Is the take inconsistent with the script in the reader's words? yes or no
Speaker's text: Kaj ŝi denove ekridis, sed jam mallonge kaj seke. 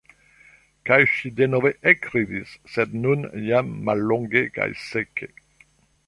yes